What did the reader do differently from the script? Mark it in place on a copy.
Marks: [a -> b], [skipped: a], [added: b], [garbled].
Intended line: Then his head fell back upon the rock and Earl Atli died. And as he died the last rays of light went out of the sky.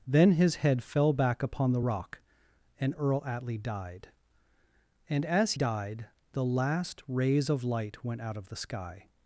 Then his head fell back upon the rock and Earl Atli died. And as [skipped: he] died the last rays of light went out of the sky.